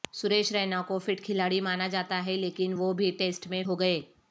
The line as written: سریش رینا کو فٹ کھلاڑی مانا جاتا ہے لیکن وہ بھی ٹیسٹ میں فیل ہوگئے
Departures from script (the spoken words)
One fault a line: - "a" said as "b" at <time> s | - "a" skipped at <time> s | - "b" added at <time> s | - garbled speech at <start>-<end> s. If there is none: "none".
- "فیل" skipped at 3.6 s